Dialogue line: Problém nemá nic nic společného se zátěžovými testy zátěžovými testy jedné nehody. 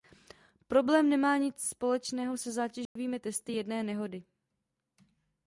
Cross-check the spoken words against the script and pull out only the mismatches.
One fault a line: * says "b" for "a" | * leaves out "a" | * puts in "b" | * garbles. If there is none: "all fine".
* leaves out "nic"
* leaves out "zátěžovými testy"